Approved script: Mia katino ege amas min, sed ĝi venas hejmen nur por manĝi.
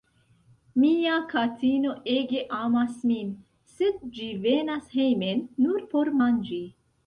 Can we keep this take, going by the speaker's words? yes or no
yes